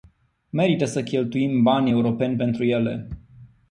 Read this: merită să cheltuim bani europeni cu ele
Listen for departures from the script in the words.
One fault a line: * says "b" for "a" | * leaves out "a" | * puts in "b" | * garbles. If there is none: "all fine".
* says "pentru" for "cu"